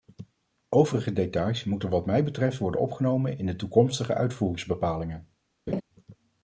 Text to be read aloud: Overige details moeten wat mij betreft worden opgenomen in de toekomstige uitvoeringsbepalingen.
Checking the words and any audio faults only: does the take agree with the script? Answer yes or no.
no